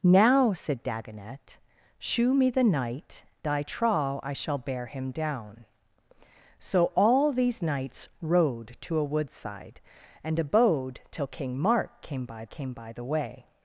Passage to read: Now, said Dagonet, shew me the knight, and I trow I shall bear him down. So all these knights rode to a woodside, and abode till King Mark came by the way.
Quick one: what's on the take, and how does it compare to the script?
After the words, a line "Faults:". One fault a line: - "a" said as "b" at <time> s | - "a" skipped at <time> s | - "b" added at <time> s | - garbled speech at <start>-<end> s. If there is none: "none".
Now, said Dagonet, shew me the knight, I trow I shall bear him down. So all these knights rode to a woodside, and abode till King Mark came by came by the way.
Faults:
- "and" skipped at 3.2 s
- "came by" added at 12.5 s